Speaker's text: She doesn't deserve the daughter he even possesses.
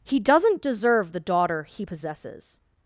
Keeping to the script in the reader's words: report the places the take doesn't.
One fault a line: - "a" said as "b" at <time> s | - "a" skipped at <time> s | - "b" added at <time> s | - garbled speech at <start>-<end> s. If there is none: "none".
- "She" said as "He" at 0.0 s
- "even" skipped at 1.9 s